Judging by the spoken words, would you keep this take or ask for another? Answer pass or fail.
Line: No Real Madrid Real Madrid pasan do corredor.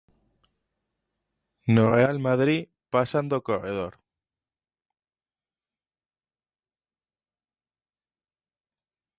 fail